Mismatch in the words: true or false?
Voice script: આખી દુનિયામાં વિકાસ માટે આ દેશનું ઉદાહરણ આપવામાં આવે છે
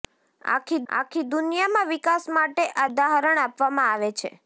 true